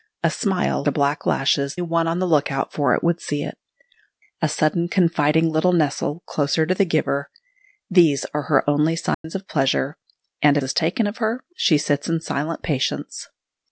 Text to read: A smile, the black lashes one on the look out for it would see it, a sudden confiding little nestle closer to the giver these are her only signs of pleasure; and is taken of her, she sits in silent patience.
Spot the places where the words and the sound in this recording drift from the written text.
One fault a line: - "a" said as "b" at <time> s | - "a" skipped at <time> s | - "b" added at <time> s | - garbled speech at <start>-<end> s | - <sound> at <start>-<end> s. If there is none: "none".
- dropout at 9.1-9.2 s